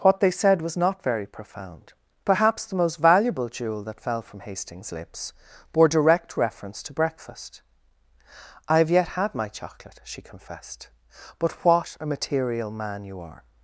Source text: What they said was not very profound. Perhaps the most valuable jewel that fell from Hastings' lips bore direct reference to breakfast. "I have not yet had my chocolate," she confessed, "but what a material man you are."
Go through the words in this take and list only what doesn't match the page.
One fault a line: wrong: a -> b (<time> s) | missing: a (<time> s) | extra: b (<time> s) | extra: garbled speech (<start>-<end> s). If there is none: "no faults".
missing: not (8.9 s)